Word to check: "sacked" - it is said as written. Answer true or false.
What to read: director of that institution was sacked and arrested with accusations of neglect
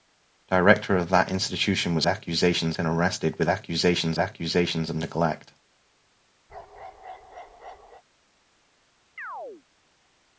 false